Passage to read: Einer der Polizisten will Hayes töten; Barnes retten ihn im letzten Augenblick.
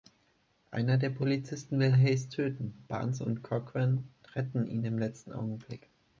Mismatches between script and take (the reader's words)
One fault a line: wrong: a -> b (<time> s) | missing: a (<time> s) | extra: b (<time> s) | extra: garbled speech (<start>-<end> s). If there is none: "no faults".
extra: und Cochran (3.2 s)